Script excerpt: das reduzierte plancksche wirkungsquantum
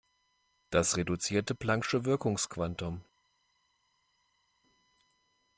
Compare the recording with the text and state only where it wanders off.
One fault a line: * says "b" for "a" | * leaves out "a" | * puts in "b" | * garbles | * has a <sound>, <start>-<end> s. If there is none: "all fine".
all fine